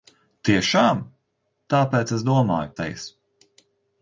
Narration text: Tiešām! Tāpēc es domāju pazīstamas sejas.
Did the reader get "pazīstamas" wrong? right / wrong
wrong